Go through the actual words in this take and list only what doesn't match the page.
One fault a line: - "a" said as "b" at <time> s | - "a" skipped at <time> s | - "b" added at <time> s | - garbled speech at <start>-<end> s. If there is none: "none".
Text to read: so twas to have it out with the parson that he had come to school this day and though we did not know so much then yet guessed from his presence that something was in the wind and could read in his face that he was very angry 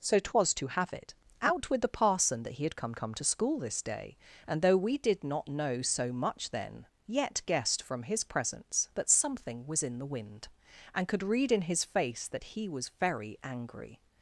- "come" added at 2.9 s